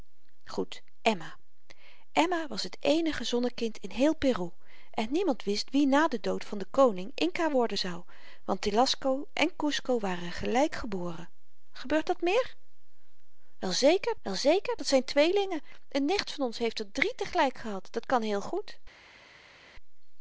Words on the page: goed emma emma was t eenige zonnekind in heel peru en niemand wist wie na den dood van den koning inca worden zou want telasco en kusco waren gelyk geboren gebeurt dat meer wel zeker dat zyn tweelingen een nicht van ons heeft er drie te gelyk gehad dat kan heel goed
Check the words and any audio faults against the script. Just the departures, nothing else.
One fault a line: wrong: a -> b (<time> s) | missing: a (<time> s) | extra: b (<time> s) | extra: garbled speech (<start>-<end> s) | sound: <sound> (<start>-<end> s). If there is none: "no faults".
extra: wel zeker (14.2 s)